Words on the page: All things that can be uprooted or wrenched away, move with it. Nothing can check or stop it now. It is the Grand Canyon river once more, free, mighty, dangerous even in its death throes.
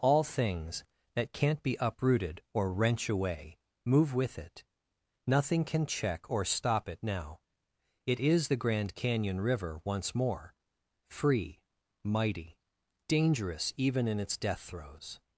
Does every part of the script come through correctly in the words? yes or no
no